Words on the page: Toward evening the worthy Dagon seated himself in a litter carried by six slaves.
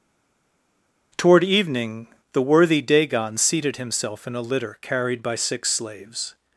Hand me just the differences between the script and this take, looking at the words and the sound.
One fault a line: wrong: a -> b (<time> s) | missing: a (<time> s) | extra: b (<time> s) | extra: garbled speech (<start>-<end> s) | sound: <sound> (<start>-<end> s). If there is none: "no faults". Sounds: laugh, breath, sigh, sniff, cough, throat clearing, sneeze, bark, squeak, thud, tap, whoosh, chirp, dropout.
no faults